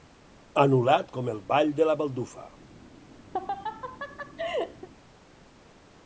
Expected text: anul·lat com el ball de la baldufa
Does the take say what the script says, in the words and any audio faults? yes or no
no